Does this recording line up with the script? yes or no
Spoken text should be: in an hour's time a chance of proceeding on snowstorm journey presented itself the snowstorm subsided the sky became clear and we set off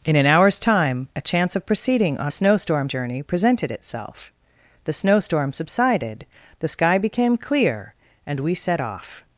yes